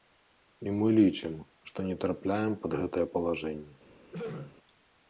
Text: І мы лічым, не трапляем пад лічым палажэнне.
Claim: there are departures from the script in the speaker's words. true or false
true